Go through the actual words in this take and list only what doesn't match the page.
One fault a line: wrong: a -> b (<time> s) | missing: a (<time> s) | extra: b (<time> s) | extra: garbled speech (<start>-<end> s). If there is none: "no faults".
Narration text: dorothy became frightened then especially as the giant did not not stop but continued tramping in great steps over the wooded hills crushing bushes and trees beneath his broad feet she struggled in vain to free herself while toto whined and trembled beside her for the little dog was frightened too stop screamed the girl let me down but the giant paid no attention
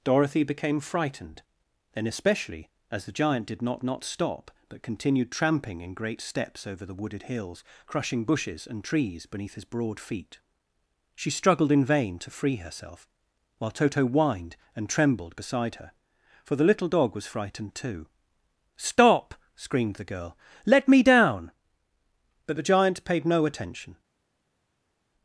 no faults